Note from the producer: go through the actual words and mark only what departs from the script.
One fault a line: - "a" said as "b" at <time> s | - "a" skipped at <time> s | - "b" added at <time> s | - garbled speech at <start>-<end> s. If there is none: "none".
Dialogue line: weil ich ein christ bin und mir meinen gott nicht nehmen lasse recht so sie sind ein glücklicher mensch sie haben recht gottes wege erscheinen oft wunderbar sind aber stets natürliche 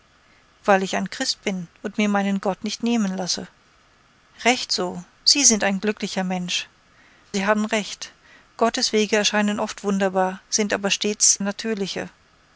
none